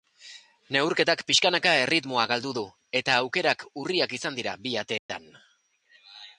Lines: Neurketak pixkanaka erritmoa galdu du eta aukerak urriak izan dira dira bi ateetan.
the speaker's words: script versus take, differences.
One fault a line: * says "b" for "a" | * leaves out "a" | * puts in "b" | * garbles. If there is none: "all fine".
* leaves out "dira"